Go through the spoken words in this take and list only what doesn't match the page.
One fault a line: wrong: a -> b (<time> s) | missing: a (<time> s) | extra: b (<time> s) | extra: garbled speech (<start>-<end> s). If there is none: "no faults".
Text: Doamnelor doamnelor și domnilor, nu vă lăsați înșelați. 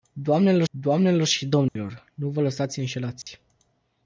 no faults